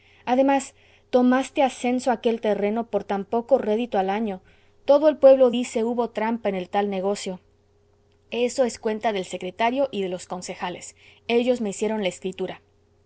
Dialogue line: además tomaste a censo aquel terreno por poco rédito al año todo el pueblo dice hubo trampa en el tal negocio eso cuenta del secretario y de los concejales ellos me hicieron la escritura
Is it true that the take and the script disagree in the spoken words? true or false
true